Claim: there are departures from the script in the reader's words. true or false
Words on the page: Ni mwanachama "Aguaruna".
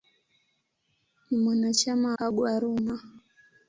false